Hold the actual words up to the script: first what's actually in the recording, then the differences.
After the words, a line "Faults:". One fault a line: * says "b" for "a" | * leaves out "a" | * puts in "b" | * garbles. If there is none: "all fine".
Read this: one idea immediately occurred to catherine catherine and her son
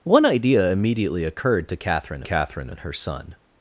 one idea immediately occurred to catherine catherine and her son
Faults:
all fine